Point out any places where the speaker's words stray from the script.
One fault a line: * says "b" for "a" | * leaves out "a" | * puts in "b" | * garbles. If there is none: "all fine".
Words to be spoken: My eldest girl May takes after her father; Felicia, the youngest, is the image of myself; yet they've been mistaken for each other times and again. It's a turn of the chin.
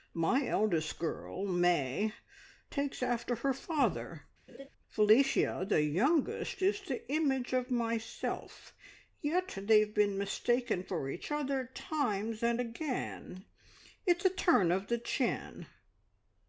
all fine